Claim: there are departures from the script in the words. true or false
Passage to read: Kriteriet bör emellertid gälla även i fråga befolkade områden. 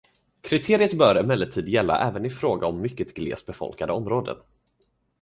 true